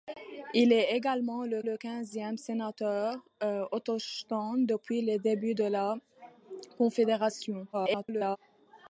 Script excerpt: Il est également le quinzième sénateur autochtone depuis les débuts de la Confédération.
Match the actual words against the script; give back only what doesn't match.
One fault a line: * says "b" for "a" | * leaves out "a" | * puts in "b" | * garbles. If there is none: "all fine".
* puts in "le"
* garbles